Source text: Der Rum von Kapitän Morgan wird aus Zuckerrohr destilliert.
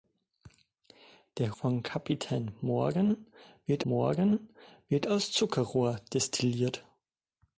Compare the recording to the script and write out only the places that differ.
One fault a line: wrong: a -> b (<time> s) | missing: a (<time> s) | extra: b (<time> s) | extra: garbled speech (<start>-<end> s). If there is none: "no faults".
missing: Rum (1.5 s)
extra: Morgan wird (3.8 s)